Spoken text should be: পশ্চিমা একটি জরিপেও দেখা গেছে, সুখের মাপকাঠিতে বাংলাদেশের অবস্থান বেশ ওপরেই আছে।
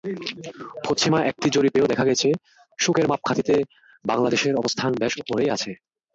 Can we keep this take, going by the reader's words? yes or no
yes